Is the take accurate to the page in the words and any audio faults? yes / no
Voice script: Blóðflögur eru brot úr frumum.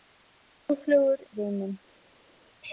no